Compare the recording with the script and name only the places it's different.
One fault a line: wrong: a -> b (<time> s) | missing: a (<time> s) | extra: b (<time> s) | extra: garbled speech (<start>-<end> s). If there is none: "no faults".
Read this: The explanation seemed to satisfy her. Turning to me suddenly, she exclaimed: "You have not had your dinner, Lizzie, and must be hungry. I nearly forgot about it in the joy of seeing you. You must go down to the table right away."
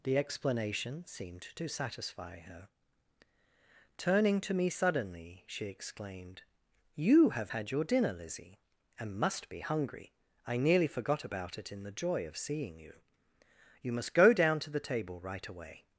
missing: not (7.5 s)